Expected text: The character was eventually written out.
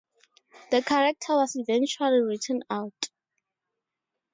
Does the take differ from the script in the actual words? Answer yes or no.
no